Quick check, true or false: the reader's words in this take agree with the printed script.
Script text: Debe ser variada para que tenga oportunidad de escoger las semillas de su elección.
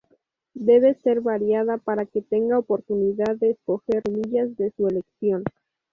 false